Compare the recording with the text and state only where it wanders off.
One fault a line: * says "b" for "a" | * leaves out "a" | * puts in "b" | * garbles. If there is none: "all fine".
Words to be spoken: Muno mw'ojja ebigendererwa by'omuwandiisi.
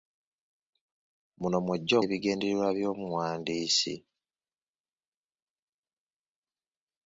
all fine